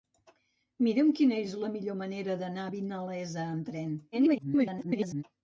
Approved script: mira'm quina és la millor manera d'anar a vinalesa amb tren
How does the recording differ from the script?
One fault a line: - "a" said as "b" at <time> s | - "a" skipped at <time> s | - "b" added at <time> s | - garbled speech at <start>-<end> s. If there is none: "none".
- garbled speech at 4.1-5.2 s